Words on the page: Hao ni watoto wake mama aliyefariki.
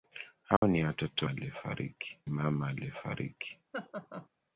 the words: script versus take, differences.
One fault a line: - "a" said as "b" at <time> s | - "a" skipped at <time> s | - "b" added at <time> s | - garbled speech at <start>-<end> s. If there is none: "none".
- "wake" said as "aliyefariki" at 1.3 s